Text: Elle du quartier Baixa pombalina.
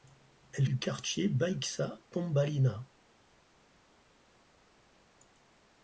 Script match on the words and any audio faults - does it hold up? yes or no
yes